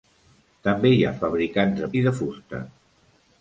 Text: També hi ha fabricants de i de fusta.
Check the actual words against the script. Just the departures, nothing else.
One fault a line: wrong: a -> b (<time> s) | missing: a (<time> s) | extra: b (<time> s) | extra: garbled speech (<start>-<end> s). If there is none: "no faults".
no faults